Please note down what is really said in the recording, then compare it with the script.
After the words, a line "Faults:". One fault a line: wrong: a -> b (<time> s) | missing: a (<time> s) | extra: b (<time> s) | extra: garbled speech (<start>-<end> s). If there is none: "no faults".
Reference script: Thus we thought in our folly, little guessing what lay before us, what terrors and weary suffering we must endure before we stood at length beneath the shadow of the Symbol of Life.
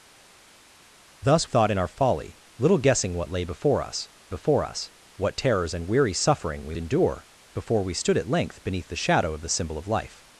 Thus thought in our folly, little guessing what lay before us before us, what terrors and weary suffering we endure before we stood at length beneath the shadow of the Symbol of Life.
Faults:
missing: we (1.5 s)
extra: before us (4.3 s)
missing: must (6.7 s)